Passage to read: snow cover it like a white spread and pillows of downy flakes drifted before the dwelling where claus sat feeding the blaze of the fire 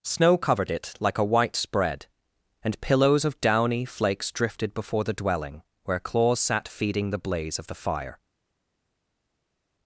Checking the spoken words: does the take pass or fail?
fail